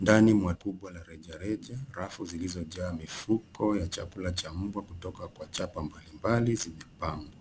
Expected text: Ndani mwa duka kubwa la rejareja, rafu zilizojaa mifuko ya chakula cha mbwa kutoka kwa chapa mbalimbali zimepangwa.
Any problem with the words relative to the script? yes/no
yes